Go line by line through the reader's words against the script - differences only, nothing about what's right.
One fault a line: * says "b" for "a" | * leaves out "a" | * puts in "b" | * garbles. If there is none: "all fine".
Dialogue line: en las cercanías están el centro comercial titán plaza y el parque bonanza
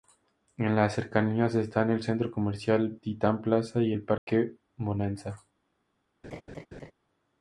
all fine